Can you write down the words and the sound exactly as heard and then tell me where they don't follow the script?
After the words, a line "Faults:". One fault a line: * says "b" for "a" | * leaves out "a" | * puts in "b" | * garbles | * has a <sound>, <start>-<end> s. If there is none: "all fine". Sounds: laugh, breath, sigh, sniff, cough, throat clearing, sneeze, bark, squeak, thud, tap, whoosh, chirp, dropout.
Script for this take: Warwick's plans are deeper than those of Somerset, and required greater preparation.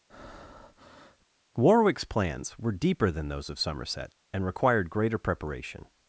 Warwick's plans were deeper than those of Somerset, and required greater preparation.
Faults:
* has a breath, 0.1-1.3 s
* says "were" for "are"